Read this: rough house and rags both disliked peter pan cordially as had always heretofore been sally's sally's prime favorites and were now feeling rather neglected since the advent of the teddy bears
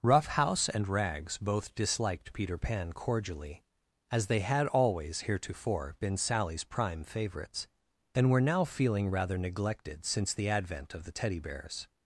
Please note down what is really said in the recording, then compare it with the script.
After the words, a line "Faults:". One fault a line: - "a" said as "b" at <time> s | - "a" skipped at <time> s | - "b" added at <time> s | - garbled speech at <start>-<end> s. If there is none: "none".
rough house and rags both disliked peter pan cordially as they had always heretofore been sally's prime favorites and were now feeling rather neglected since the advent of the teddy bears
Faults:
- "they" added at 4.2 s
- "sally's" skipped at 6.6 s